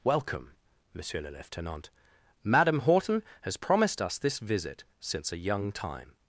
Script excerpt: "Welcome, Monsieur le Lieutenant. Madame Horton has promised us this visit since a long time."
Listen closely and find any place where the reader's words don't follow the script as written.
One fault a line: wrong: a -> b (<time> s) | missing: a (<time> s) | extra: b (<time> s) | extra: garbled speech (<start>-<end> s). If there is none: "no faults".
wrong: long -> young (5.4 s)